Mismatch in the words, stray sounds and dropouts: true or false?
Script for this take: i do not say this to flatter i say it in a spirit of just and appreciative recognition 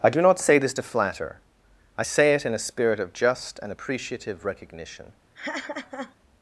true